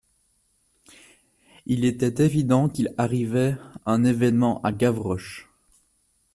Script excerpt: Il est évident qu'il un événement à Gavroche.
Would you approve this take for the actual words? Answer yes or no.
no